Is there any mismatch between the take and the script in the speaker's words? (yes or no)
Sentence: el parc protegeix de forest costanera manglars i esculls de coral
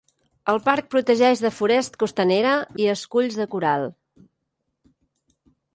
yes